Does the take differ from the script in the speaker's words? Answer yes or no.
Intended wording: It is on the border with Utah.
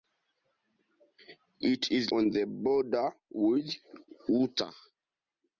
no